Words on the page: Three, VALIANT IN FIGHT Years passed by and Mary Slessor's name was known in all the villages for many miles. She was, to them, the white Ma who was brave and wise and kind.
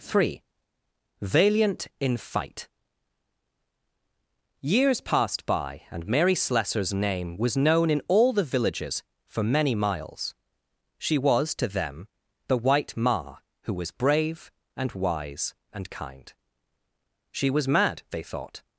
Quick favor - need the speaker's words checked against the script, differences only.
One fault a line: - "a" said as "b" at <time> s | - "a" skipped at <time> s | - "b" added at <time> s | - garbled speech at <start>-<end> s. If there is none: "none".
- "She was mad they thought" added at 17.3 s